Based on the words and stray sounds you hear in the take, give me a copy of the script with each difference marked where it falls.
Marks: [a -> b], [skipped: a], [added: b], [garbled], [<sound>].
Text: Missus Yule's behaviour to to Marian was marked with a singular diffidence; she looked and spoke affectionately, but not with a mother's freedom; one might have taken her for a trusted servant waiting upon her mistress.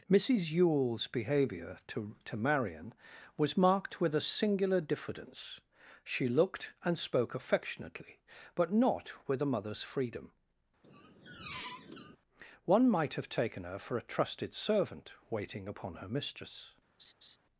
Missus Yule's behaviour to to Marian was marked with a singular diffidence; she looked and spoke affectionately, but not with a mother's freedom; [squeak] one might have taken her for a trusted servant waiting upon her mistress. [laugh]